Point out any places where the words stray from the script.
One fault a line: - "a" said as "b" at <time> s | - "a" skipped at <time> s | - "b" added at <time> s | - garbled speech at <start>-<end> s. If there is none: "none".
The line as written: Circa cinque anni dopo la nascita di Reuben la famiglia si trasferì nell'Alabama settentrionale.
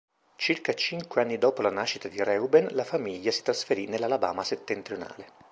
none